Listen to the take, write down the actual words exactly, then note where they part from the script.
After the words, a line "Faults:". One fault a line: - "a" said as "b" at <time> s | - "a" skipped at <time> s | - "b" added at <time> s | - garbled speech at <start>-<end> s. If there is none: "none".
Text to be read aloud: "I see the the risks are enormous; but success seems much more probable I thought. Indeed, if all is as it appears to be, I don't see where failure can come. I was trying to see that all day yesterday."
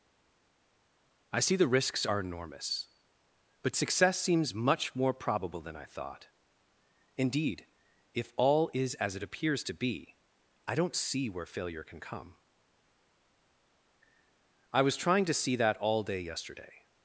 "I see the risks are enormous; but success seems much more probable than I thought. Indeed, if all is as it appears to be, I don't see where failure can come. I was trying to see that all day yesterday."
Faults:
- "the" skipped at 1.7 s
- "than" added at 5.6 s